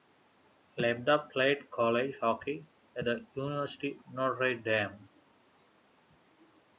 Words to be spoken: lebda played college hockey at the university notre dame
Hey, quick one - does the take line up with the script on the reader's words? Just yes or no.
yes